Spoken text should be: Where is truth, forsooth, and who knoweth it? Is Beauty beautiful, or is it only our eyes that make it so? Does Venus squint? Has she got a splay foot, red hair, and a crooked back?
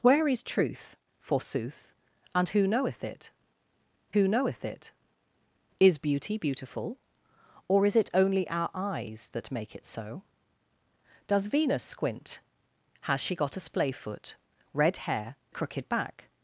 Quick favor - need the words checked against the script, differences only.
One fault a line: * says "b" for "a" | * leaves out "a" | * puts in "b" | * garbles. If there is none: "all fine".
* puts in "who knoweth it"
* leaves out "and"